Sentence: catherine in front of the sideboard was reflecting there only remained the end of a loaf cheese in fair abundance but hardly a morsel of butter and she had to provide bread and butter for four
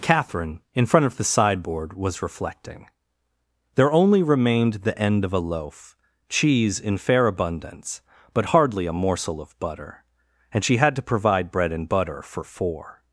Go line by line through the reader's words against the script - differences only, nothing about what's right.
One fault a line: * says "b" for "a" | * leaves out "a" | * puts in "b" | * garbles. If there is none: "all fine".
all fine